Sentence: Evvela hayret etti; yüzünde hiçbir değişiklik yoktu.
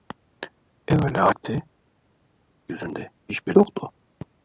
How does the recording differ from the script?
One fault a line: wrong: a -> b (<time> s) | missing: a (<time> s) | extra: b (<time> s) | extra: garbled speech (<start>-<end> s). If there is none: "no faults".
missing: hayret (1.3 s)
missing: değişiklik (3.6 s)